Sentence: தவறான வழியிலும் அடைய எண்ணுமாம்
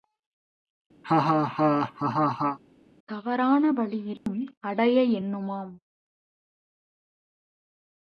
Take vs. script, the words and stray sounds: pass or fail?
fail